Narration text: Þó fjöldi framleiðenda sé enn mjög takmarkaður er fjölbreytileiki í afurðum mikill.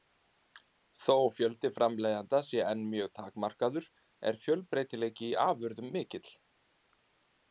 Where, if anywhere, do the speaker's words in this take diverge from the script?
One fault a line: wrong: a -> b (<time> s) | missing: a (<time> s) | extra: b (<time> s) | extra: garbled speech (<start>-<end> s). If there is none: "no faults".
no faults